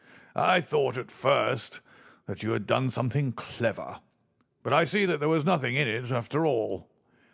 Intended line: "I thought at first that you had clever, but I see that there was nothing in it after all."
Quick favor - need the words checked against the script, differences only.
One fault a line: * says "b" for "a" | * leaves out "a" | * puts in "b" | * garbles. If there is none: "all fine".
* puts in "done something"